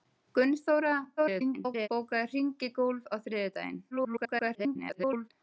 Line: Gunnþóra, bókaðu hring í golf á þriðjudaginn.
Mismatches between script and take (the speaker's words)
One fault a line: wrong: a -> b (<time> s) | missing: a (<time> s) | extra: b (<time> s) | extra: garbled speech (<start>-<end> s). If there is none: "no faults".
extra: garbled speech (1.2-1.9 s)
extra: garbled speech (3.9-5.3 s)